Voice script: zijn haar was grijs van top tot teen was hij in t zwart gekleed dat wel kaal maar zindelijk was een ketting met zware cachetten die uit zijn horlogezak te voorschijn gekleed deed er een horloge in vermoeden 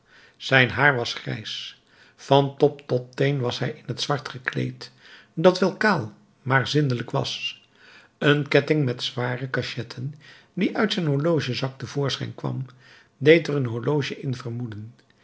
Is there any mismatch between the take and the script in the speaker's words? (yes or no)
yes